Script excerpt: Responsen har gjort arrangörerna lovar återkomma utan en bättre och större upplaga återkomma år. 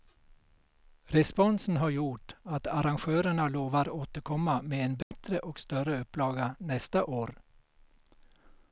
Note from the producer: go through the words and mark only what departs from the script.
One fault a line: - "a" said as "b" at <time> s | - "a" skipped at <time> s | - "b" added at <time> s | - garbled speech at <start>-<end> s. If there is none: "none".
- "att" added at 2.4 s
- "utan" said as "med" at 4.6 s
- "återkomma" said as "nästa" at 6.6 s